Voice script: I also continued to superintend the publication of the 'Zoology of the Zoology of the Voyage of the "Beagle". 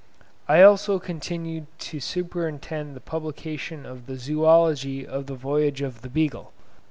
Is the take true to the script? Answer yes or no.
no